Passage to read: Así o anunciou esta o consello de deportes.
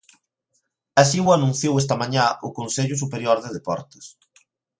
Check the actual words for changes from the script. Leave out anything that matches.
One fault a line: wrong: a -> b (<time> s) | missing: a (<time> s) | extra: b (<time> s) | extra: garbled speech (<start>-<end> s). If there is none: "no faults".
extra: mañá (2.0 s)
extra: superior (3.0 s)